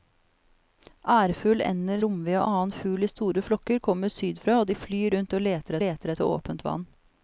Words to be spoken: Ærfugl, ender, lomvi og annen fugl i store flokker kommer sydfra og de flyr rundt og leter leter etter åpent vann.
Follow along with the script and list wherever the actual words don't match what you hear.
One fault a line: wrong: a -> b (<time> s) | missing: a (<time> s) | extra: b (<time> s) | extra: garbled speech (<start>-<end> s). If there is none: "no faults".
no faults